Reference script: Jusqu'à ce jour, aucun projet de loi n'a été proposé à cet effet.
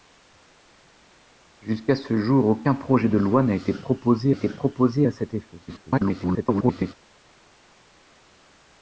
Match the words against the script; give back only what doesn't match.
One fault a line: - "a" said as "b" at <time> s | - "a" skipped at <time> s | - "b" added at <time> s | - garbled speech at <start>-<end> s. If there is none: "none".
- "été proposé" added at 4.3 s
- garbled speech at 5.7-6.9 s